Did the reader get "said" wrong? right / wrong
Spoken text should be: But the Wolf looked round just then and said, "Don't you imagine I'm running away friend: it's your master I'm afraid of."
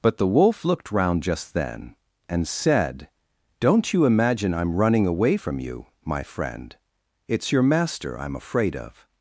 right